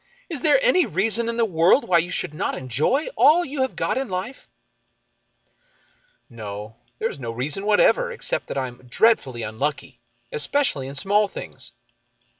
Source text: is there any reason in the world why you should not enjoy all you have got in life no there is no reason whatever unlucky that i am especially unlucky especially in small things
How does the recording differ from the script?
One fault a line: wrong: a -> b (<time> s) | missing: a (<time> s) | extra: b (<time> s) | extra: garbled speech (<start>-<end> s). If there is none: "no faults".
wrong: unlucky -> except (8.1 s)
wrong: especially -> dreadfully (8.9 s)